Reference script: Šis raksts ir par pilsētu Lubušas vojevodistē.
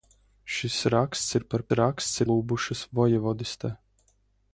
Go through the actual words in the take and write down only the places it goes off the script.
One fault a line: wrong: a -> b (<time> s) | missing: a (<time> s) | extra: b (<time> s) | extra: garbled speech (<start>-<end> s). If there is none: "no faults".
wrong: pilsētu -> raksts (1.8 s)